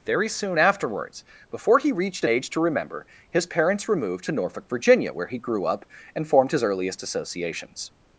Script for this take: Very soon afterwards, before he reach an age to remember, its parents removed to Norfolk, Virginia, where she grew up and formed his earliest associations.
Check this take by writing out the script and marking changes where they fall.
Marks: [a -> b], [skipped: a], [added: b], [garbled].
Very soon afterwards, before he [reach -> reached] an age to remember, [its -> his] parents removed to Norfolk, Virginia, where [she -> he] grew up and formed his earliest associations.